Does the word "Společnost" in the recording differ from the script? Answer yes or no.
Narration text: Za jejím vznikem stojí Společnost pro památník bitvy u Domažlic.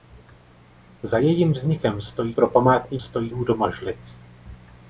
yes